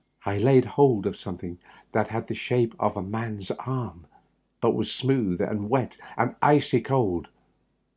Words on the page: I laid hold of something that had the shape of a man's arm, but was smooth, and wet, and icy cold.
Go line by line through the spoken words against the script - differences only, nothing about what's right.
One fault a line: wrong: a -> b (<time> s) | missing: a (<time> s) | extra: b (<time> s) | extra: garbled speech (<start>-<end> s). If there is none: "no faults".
no faults